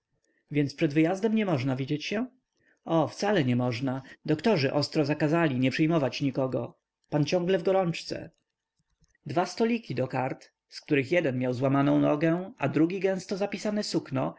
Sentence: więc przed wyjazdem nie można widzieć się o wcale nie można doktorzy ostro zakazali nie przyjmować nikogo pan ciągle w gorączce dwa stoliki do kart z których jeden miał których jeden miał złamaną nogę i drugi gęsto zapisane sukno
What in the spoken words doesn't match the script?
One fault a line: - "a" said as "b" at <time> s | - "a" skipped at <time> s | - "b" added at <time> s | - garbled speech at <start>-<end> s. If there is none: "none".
- "których jeden miał" skipped at 11.5 s
- "i" said as "a" at 12.6 s